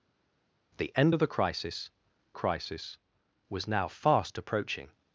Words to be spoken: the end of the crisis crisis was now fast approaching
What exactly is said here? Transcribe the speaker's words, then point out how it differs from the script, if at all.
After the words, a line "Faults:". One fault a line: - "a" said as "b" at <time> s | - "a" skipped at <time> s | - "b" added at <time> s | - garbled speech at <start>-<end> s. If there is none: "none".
the end of the crisis crisis was now fast approaching
Faults:
none